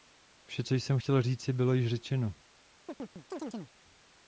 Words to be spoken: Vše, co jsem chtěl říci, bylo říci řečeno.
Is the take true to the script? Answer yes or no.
no